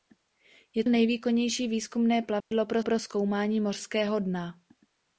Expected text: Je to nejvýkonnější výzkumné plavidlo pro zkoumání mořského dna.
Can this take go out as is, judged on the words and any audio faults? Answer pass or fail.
fail